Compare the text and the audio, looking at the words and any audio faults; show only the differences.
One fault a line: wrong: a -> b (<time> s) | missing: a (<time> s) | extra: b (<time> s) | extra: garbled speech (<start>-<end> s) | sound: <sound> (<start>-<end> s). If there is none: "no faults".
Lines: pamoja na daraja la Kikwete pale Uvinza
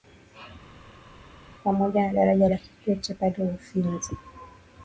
no faults